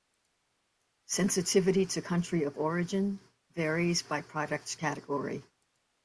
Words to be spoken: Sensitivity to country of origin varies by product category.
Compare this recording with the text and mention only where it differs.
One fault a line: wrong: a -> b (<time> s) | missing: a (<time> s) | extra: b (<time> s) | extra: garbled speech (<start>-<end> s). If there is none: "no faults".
no faults